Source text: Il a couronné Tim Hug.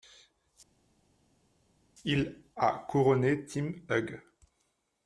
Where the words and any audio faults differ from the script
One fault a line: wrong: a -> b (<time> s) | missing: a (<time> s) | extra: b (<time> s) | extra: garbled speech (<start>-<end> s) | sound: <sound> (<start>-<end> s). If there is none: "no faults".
no faults